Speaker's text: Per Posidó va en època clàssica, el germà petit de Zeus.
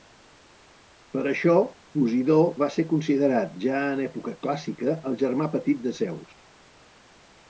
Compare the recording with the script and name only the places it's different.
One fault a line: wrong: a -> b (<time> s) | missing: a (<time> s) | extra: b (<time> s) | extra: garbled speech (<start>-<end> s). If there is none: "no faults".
extra: això (1.3 s)
extra: ser considerat ja (2.7 s)